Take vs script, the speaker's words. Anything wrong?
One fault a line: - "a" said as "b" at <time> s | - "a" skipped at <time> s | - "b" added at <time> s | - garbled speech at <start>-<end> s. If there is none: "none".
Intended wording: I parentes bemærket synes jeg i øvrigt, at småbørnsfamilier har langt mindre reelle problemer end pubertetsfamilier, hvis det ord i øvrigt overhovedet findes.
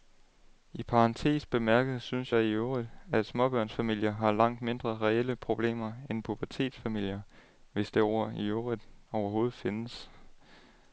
none